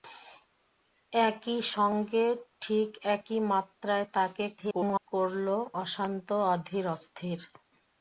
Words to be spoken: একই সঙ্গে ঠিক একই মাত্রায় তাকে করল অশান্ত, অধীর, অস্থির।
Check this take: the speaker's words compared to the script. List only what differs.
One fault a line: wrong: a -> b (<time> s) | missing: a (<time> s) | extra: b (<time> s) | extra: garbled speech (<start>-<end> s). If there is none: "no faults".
extra: garbled speech (4.6-5.0 s)